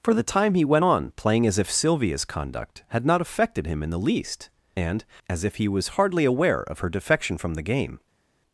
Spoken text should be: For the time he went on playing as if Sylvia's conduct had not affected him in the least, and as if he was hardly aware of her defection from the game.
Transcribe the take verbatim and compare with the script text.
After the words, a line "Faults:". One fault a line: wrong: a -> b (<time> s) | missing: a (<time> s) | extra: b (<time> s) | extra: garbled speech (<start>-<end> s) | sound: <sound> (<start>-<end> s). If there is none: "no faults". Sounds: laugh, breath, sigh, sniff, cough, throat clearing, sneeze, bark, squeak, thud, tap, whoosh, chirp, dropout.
For the time he went on playing as if Sylvia's conduct had not affected him in the least, and as if he was hardly aware of her defection from the game.
Faults:
no faults